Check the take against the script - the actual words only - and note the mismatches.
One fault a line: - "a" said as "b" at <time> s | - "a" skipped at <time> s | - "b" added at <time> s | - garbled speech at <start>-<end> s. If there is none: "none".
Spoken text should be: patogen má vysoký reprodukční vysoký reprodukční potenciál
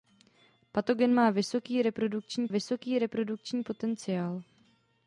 none